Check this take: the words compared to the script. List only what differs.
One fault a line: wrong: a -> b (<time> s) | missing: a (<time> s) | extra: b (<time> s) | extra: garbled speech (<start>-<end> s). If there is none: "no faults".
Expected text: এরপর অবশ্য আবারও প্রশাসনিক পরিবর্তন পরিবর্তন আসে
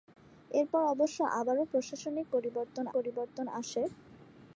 no faults